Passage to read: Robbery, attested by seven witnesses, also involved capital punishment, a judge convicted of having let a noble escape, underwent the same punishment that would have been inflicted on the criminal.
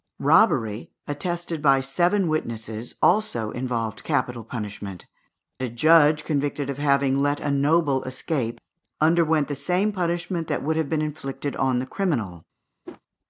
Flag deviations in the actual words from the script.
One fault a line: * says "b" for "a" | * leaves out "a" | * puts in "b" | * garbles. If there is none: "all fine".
all fine